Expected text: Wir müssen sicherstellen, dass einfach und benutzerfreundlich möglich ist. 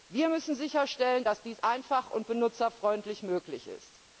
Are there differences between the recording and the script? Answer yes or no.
yes